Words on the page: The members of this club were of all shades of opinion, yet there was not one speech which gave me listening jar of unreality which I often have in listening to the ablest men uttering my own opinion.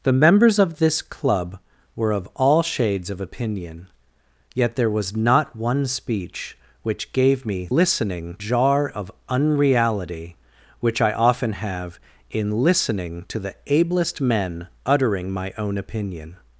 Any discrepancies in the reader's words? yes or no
no